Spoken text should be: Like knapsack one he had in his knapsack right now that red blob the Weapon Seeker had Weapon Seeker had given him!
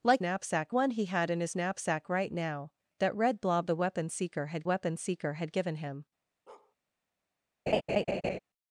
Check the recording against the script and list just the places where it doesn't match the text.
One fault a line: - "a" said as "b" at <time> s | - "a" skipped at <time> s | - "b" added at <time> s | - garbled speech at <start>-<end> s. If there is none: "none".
none